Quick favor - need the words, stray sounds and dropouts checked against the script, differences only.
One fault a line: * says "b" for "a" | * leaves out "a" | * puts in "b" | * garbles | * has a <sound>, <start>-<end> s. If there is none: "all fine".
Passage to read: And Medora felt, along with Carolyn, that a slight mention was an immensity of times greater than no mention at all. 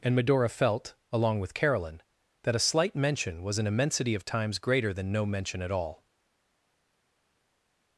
all fine